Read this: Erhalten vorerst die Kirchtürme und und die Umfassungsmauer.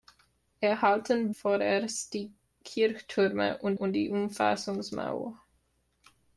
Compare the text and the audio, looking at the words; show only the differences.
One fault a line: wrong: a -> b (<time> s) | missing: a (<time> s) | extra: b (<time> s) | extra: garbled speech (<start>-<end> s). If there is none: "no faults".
no faults